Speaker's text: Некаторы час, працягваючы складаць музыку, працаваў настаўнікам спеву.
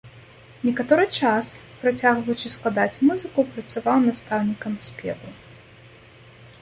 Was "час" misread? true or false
false